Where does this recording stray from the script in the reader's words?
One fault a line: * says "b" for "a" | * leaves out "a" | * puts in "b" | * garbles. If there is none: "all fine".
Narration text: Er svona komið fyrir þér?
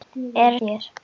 * leaves out "svona komið fyrir"